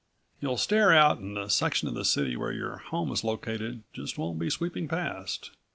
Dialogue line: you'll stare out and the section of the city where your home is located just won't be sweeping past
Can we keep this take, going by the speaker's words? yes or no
yes